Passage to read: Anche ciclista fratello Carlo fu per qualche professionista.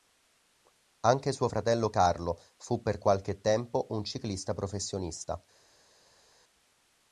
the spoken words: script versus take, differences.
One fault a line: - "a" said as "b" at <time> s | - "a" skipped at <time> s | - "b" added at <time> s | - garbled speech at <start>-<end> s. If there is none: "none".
- "ciclista" said as "suo" at 1.3 s
- "tempo un ciclista" added at 3.4 s